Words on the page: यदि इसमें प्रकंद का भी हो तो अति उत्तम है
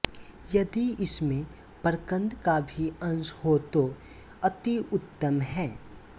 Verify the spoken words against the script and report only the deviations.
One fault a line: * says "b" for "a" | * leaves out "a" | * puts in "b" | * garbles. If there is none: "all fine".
* puts in "अंश"